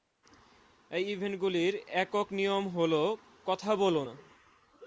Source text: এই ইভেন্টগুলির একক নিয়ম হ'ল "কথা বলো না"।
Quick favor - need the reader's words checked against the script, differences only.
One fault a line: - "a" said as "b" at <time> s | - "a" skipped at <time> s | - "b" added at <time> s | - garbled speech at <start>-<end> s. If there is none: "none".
none